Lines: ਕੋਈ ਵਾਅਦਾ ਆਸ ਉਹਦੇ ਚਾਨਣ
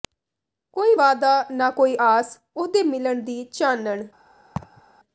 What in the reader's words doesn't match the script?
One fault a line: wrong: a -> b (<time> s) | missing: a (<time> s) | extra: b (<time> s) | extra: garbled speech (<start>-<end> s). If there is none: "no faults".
extra: ਨਾ ਕੋਈ (1.5 s)
extra: ਮਿਲਣ ਦੀ (2.8 s)